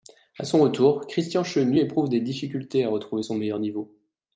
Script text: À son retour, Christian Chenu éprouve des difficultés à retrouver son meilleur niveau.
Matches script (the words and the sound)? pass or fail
pass